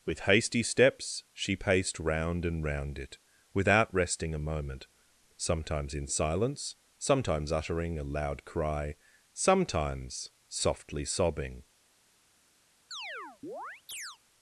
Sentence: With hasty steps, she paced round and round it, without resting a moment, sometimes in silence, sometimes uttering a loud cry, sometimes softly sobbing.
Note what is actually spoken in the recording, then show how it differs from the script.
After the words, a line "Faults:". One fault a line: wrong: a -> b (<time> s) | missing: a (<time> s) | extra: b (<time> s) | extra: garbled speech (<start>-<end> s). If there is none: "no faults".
With hasty steps, she paced round and round it, without resting a moment, sometimes in silence, sometimes uttering a loud cry, sometimes softly sobbing.
Faults:
no faults